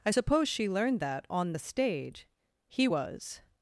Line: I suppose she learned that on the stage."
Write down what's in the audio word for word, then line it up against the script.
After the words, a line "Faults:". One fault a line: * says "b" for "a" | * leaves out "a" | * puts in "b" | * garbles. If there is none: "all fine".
I suppose she learned that on the stage." He was
Faults:
* puts in "He was"